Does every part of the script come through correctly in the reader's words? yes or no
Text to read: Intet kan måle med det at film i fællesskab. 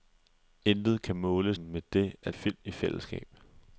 yes